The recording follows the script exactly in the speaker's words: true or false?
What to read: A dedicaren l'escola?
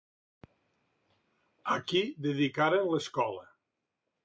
false